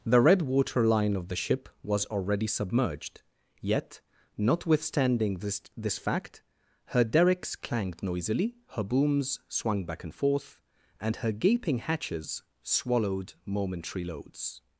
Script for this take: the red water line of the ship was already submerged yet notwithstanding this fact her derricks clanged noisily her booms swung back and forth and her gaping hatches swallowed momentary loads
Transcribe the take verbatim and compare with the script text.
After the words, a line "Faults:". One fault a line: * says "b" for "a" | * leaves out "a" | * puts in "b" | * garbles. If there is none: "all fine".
the red water line of the ship was already submerged yet notwithstanding this this fact her derricks clanged noisily her booms swung back and forth and her gaping hatches swallowed momentary loads
Faults:
* puts in "this"